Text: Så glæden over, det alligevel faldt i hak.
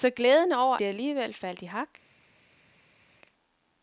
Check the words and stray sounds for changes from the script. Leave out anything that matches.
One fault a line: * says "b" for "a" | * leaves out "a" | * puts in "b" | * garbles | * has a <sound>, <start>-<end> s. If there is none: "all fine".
all fine